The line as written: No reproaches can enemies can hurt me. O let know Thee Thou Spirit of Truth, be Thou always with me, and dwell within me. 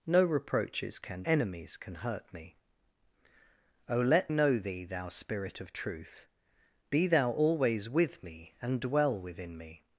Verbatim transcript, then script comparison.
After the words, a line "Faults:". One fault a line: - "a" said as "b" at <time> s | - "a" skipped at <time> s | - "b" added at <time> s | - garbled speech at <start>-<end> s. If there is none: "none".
No reproaches can enemies can hurt me. O let know Thee Thou Spirit of Truth, be Thou always with me, and dwell within me.
Faults:
none